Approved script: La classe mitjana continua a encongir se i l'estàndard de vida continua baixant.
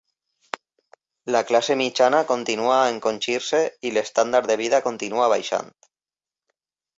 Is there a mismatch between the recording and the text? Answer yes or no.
no